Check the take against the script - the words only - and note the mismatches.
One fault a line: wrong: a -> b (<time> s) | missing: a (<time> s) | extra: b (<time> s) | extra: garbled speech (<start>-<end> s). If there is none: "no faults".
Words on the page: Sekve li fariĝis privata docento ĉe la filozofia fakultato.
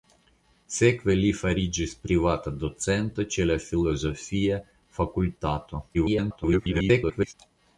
extra: garbled speech (5.9-7.3 s)